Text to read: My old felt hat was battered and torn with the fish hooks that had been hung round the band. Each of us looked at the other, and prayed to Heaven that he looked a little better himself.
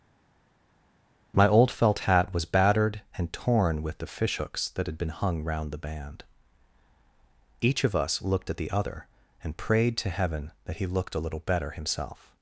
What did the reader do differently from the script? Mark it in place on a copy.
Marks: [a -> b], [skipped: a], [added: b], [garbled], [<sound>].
My old felt hat was battered and torn with the fish hooks that had been hung round the band. Each of us looked at the other, and prayed to Heaven that he looked a little better himself.